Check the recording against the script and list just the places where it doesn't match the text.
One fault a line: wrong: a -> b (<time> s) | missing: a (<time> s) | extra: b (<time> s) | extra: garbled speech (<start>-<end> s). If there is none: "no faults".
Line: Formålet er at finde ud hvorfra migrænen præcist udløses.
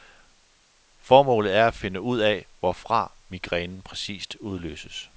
extra: af (2.2 s)